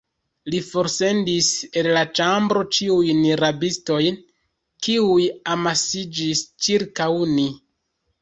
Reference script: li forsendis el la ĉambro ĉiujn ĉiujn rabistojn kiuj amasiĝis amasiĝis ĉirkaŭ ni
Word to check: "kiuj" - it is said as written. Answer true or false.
true